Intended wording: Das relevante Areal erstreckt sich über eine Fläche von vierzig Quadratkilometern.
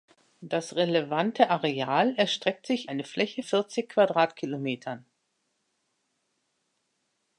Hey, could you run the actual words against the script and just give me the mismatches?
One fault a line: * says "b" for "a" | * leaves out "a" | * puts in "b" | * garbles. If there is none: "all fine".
* leaves out "über"
* leaves out "von"